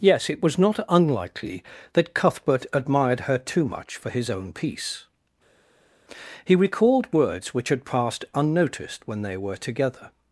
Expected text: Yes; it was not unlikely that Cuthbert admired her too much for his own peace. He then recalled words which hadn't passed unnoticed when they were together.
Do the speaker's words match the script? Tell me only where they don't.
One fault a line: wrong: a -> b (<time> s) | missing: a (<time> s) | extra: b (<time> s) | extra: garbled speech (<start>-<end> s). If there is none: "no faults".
missing: then (6.6 s)
wrong: hadn't -> had (7.7 s)